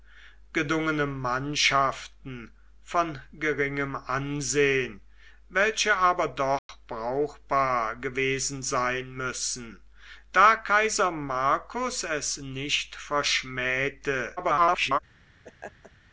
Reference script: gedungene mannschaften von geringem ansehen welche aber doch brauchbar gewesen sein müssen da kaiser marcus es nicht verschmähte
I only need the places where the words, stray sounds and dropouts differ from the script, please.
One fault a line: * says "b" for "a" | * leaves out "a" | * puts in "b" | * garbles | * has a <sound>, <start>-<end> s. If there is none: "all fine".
* has a dropout, 6.6-6.7 s
* garbles
* has a laugh, 15.4-15.9 s